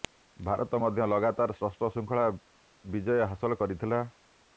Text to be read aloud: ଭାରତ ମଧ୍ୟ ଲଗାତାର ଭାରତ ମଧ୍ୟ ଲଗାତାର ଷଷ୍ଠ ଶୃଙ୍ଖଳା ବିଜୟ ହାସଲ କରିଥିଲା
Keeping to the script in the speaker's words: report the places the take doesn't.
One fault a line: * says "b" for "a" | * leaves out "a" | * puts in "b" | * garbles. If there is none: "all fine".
* leaves out "ଭାରତ ମଧ୍ୟ ଲଗାତାର"